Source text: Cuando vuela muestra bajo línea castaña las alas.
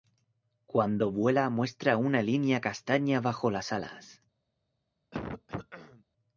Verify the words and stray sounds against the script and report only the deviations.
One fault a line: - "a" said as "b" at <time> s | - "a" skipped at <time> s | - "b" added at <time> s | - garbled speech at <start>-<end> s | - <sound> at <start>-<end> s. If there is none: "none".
- "bajo" said as "una" at 1.9 s
- "bajo" added at 3.2 s
- throat clearing at 5.1-6.0 s